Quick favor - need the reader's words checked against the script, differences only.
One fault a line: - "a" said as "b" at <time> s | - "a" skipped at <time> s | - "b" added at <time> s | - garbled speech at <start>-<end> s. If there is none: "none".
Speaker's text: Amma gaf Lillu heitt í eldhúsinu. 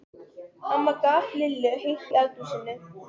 none